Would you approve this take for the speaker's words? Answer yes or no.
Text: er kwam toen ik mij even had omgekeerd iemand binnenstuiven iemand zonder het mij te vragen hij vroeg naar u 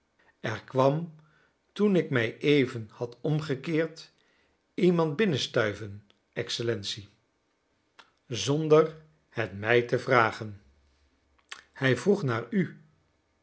no